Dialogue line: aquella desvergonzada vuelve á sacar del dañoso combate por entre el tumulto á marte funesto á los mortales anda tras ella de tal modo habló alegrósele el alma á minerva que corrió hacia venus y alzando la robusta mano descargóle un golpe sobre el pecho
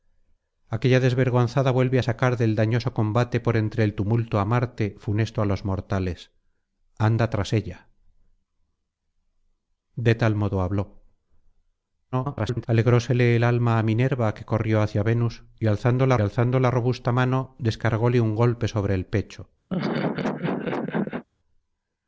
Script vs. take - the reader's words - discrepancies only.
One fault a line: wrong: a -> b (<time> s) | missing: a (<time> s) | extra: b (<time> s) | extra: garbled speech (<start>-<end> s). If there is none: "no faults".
extra: garbled speech (12.1-12.7 s)
extra: alzando la (16.2 s)